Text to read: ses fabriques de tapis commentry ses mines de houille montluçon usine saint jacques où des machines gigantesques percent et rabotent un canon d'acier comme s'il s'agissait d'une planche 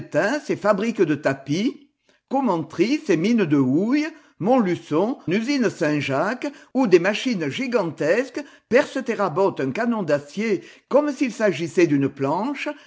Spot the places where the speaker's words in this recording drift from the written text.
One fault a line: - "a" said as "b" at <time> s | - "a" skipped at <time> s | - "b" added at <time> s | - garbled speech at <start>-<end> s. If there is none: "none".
none